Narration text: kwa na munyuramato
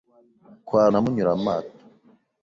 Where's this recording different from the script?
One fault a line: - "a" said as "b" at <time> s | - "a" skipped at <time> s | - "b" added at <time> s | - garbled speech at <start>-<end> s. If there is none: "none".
none